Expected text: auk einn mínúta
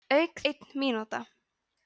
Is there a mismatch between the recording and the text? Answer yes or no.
no